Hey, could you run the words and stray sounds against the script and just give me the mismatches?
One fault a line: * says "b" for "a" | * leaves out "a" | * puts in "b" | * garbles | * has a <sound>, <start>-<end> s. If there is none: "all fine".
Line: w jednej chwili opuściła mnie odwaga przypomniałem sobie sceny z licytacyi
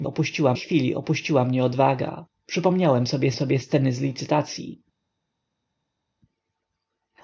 * says "opuściła" for "jednej"
* puts in "sobie"